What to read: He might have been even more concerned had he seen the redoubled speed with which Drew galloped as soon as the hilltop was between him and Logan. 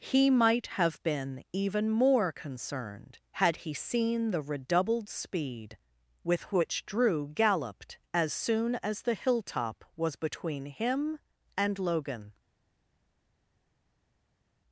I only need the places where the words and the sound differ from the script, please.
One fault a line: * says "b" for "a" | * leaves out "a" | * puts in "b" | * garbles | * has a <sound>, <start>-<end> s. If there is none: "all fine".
all fine